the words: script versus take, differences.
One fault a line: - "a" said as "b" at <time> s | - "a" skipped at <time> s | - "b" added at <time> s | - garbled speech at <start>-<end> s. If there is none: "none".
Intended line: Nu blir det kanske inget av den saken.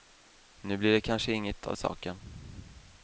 - "den" skipped at 1.8 s